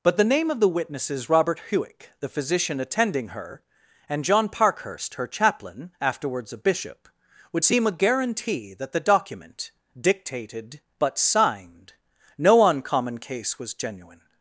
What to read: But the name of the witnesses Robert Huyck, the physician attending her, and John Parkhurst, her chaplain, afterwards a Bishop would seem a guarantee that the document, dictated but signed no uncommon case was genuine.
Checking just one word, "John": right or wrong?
right